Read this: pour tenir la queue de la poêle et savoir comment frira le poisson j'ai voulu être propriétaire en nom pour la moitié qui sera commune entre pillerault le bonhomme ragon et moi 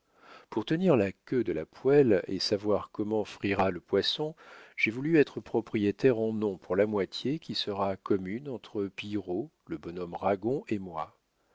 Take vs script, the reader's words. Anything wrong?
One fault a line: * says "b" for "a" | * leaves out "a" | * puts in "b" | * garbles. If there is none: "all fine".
all fine